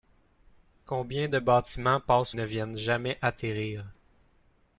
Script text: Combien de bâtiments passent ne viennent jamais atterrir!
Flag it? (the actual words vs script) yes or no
no